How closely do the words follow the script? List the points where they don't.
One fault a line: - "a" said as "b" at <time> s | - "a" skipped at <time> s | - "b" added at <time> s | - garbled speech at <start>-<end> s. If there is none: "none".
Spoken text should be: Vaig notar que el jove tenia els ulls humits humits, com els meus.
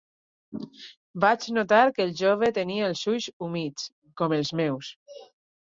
- "humits" skipped at 3.9 s